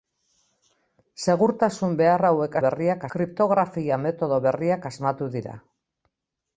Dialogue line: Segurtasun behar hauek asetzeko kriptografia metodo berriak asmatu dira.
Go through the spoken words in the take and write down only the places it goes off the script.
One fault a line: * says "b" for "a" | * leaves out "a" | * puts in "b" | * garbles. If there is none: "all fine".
* says "berriak" for "asetzeko"